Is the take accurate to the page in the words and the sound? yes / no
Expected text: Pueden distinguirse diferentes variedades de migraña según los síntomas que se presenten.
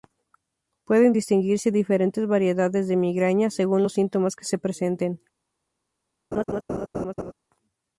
no